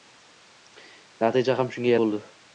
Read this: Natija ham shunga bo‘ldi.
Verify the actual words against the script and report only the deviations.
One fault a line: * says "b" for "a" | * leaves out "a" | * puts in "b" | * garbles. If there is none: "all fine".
all fine